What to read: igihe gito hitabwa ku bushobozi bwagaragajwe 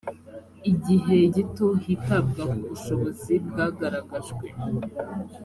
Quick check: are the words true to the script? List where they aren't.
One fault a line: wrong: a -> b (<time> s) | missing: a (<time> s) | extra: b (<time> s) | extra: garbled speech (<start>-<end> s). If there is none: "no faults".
no faults